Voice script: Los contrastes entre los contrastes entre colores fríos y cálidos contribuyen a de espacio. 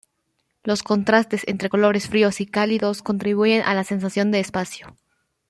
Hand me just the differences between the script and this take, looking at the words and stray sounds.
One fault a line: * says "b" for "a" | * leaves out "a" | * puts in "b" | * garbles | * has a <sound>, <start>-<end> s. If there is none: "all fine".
* leaves out "los contrastes entre"
* puts in "la sensación"